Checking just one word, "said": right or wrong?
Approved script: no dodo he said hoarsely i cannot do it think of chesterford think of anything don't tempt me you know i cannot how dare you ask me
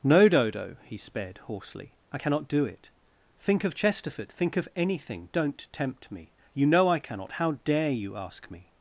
wrong